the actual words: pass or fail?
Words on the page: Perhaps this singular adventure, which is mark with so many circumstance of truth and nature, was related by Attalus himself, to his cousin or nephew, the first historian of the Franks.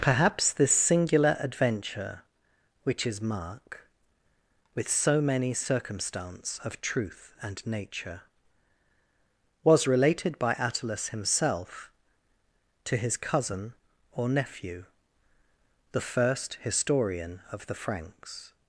pass